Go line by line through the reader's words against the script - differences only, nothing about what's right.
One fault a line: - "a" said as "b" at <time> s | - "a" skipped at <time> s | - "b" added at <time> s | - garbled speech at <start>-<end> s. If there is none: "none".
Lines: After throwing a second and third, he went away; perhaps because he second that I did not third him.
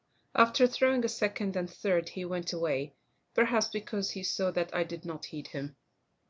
- "second" said as "saw" at 4.2 s
- "third" said as "heed" at 5.2 s